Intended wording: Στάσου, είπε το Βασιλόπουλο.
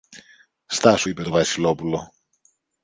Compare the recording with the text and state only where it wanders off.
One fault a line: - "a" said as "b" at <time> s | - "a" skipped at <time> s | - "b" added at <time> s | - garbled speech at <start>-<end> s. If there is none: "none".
none